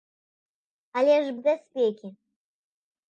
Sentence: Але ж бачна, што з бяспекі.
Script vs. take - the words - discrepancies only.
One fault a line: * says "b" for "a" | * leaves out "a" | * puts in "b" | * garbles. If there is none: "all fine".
* leaves out "бачна што"